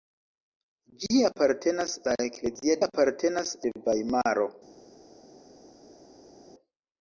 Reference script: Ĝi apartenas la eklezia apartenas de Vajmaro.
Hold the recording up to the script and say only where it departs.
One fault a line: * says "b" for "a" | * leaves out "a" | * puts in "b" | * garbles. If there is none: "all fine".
all fine